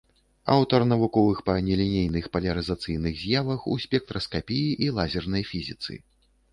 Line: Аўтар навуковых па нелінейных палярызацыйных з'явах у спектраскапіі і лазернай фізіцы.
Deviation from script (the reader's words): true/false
false